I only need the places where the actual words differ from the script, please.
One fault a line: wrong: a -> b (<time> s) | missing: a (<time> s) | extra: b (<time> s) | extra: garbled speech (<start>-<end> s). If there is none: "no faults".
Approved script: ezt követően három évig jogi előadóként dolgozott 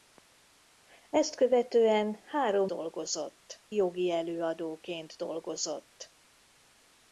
wrong: évig -> dolgozott (2.6 s)